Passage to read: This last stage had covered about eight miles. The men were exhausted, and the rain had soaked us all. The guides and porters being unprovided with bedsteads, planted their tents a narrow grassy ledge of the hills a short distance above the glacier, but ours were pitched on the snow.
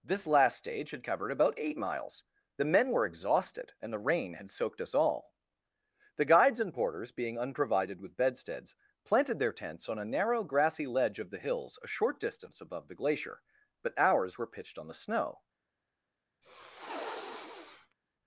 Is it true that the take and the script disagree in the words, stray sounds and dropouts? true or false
true